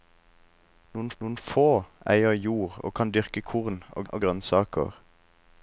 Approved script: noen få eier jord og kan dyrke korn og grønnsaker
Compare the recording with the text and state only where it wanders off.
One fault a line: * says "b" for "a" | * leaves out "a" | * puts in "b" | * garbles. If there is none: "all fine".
* puts in "noen"
* puts in "og"